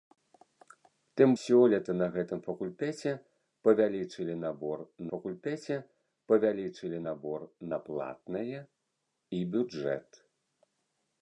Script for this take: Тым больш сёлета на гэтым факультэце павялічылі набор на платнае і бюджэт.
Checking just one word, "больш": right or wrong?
wrong